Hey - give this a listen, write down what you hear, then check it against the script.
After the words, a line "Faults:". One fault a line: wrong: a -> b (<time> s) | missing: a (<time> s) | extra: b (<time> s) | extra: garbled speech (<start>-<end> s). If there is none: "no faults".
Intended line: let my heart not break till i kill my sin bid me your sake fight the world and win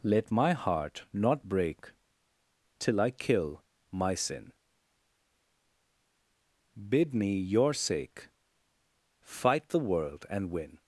let my heart not break till i kill my sin bid me your sake fight the world and win
Faults:
no faults